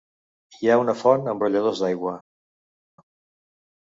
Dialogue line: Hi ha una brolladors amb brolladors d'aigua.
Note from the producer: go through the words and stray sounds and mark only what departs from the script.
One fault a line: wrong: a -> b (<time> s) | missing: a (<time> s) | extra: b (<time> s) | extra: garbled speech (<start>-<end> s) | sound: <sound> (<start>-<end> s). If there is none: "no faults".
wrong: brolladors -> font (1.0 s)